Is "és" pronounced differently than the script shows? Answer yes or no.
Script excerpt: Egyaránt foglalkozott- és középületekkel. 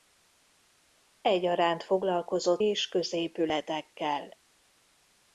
no